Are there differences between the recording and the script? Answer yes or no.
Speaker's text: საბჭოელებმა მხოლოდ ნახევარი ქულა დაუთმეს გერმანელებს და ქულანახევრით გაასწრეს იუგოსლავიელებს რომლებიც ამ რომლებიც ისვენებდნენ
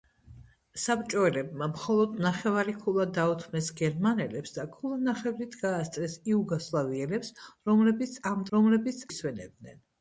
no